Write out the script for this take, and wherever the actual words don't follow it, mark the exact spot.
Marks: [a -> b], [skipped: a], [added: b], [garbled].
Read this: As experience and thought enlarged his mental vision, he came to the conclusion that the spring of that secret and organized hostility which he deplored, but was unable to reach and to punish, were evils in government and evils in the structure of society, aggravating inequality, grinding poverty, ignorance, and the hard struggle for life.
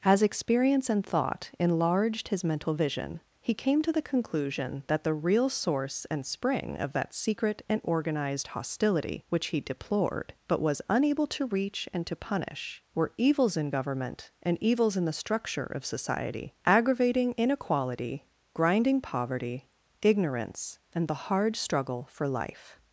As experience and thought enlarged his mental vision, he came to the conclusion that the [added: real source and] spring of that secret and organized hostility which he deplored, but was unable to reach and to punish, were evils in government and evils in the structure of society, aggravating inequality, grinding poverty, ignorance, and the hard struggle for life.